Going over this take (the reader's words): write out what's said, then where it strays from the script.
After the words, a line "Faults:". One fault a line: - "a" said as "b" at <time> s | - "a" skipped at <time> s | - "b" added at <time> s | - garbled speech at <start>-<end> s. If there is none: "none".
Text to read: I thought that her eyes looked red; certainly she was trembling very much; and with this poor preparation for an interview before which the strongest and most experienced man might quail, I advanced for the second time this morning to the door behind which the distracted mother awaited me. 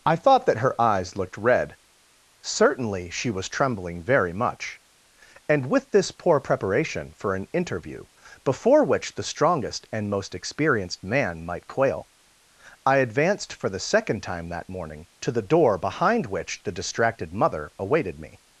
I thought that her eyes looked red; certainly she was trembling very much; and with this poor preparation for an interview before which the strongest and most experienced man might quail, I advanced for the second time that morning to the door behind which the distracted mother awaited me.
Faults:
- "this" said as "that" at 14.5 s